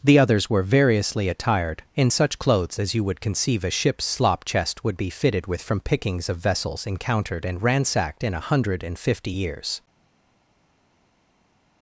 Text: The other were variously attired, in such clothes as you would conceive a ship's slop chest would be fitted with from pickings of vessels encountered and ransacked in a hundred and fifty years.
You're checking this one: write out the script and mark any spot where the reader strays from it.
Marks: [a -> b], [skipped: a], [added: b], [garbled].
The [other -> others] were variously attired, in such clothes as you would conceive a ship's slop chest would be fitted with from pickings of vessels encountered and ransacked in a hundred and fifty years.